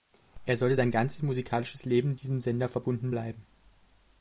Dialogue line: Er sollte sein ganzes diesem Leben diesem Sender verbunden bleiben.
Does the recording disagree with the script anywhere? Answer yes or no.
yes